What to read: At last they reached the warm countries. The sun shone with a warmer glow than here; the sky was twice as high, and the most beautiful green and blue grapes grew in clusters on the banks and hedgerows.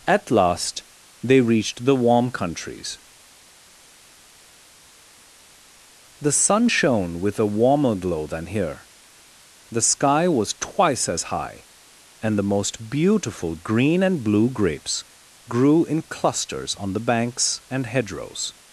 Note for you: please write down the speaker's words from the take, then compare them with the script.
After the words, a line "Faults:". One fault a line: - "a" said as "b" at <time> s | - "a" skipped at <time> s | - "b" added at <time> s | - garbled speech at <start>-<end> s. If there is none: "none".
At last they reached the warm countries. The sun shone with a warmer glow than here; the sky was twice as high, and the most beautiful green and blue grapes grew in clusters on the banks and hedgerows.
Faults:
none